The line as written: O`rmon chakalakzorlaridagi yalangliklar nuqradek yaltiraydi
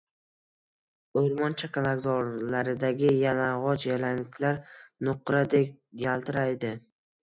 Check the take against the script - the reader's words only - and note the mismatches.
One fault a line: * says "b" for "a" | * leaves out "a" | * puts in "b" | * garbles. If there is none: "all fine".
* puts in "yalang`och"